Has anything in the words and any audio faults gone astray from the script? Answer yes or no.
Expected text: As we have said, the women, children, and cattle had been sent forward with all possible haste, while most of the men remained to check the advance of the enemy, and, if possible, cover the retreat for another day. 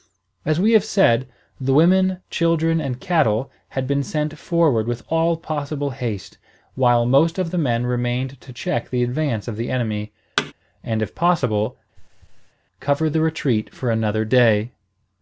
yes